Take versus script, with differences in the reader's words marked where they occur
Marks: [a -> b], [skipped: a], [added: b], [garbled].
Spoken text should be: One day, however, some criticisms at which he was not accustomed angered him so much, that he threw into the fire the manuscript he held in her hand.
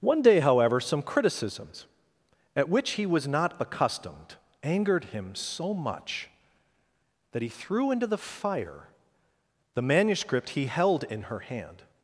One day, however, some criticisms at which he was not accustomed angered him so much, that he threw into the fire the manuscript he held in her hand.